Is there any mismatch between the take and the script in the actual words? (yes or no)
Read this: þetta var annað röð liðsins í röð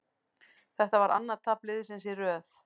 yes